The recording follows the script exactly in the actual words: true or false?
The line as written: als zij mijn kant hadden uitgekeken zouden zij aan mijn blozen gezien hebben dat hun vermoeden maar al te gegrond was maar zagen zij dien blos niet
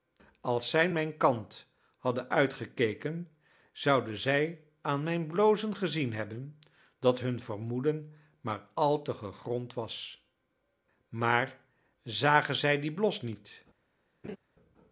true